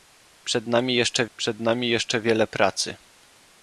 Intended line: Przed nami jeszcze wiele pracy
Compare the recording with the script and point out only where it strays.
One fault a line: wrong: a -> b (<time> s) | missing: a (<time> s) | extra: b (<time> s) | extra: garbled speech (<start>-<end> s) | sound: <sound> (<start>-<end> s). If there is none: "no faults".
extra: przed nami jeszcze (1.4 s)